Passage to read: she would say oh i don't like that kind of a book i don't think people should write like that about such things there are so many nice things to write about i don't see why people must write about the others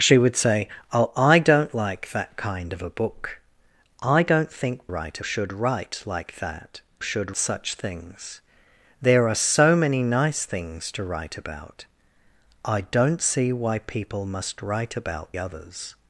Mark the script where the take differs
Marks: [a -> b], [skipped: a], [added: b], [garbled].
she would say oh i don't like that kind of a book i don't think [people -> write] should write like that [about -> should] such things there are so many nice things to write about i don't see why people must write about [skipped: the] others